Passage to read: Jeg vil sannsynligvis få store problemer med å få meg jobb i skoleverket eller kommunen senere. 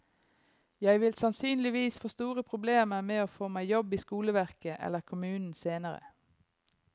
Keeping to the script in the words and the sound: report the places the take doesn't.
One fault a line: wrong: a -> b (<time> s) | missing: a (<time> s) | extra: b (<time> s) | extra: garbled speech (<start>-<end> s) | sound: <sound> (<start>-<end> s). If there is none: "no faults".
no faults